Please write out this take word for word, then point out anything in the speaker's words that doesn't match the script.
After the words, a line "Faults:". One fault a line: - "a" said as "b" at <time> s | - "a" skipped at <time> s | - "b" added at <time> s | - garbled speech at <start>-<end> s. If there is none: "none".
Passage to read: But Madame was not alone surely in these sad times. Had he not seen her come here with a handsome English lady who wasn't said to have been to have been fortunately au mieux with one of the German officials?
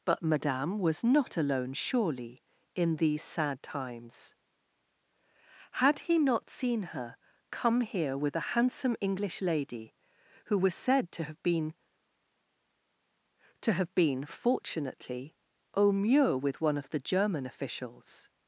But Madame was not alone surely in these sad times. Had he not seen her come here with a handsome English lady who was said to have been to have been fortunately au mieux with one of the German officials?
Faults:
- "wasn't" said as "was" at 10.6 s